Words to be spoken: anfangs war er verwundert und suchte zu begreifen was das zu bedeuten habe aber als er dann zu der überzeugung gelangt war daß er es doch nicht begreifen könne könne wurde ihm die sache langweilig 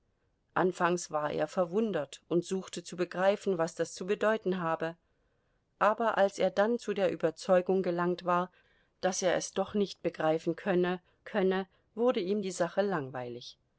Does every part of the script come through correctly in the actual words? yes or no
yes